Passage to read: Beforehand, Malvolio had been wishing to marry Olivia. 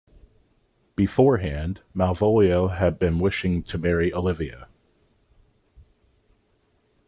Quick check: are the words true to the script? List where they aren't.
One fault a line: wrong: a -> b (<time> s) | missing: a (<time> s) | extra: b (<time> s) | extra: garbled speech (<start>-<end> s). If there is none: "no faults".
no faults